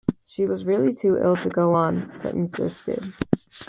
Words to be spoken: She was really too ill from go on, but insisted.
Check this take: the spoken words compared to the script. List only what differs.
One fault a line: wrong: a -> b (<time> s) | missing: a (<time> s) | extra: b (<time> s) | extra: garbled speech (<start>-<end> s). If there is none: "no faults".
wrong: from -> to (1.4 s)